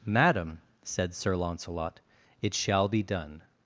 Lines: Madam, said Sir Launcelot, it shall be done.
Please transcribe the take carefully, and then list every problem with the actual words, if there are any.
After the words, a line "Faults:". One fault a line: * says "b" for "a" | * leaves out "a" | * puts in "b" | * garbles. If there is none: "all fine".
Madam, said Sir Launcelot, it shall be done.
Faults:
all fine